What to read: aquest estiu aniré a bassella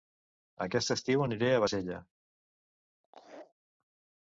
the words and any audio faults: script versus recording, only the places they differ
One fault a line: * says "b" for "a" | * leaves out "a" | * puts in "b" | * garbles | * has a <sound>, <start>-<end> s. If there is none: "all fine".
* has a laugh, 3.0-3.5 s